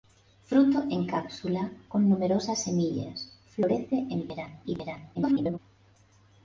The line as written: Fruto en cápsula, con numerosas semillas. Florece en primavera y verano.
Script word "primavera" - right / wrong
wrong